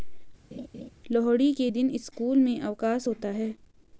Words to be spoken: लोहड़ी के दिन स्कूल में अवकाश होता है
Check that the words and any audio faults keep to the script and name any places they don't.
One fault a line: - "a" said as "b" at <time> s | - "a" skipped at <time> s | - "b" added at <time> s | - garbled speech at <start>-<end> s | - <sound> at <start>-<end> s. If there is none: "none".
- laugh at 0.5-0.9 s